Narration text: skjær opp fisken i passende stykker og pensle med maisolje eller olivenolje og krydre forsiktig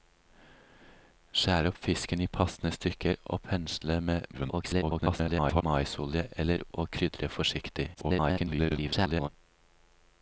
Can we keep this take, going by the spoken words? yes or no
no